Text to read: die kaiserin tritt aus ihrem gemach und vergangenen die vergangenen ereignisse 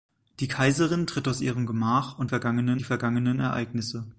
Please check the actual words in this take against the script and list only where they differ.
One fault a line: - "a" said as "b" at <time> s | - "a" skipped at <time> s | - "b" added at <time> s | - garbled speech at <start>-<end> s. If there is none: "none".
none